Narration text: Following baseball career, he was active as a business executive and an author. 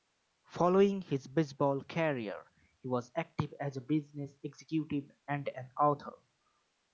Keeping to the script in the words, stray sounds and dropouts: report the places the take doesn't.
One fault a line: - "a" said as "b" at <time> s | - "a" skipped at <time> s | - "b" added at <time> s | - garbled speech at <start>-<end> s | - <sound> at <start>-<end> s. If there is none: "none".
- "his" added at 1.0 s